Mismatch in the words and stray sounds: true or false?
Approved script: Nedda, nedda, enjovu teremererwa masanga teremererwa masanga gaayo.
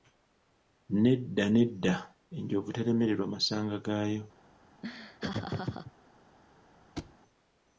true